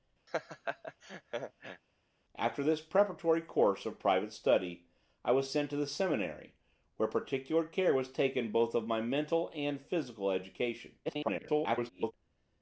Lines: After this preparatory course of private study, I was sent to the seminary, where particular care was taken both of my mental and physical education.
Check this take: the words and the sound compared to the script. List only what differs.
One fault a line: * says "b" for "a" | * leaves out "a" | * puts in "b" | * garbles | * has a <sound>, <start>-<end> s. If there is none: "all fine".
* has a laugh, 0.3-1.8 s
* garbles